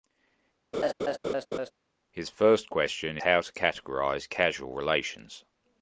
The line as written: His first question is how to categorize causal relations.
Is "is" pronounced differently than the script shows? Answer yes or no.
yes